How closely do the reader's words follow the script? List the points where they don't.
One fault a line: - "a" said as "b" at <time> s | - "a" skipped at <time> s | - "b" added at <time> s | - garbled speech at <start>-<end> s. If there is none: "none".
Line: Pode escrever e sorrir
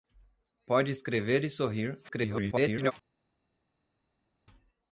- garbled speech at 2.1-2.9 s